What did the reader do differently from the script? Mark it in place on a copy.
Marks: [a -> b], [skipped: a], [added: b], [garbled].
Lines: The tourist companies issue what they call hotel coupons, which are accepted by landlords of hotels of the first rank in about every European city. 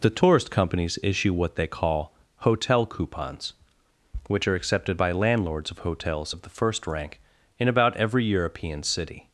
The tourist companies issue what they call hotel coupons, which are accepted by landlords of hotels of the first rank in about every European city.